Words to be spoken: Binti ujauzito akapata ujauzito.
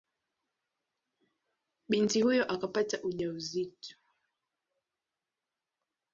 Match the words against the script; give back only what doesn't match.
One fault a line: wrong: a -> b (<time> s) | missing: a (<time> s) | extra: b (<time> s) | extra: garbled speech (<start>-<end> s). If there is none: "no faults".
wrong: ujauzito -> huyo (2.2 s)